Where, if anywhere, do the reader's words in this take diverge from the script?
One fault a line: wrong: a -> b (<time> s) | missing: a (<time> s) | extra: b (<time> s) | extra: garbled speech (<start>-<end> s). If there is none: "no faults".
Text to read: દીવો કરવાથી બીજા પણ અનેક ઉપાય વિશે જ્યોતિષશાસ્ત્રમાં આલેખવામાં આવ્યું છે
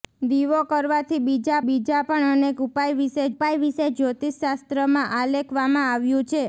extra: બીજા (1.6 s)
extra: ઉપાય વિશે (3.3 s)